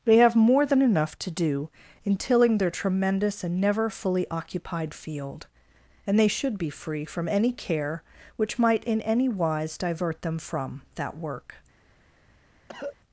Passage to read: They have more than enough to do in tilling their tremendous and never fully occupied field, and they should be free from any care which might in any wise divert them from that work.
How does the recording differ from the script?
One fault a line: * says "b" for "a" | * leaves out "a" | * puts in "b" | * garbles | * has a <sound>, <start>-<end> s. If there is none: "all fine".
* has a cough, 12.7-13.0 s